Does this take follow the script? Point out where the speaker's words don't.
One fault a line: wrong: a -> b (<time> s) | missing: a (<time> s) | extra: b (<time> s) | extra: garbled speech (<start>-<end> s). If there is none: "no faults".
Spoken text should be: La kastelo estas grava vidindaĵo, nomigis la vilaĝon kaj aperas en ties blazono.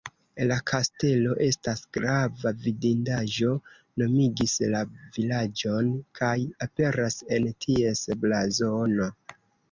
no faults